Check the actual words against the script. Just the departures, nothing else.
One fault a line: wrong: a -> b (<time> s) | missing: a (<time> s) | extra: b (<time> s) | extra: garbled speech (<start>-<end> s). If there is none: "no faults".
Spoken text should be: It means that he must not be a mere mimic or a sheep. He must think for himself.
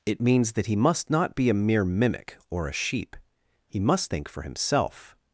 no faults